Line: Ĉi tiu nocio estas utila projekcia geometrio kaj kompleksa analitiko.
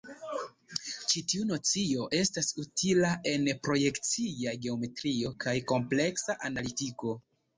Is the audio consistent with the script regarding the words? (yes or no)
no